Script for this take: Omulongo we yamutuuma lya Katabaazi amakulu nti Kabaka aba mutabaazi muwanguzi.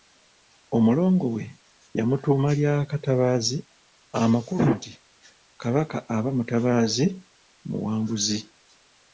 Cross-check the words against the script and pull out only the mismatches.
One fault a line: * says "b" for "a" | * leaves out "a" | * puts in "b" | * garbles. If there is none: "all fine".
all fine